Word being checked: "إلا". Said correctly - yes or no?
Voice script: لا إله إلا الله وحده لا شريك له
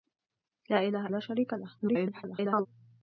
no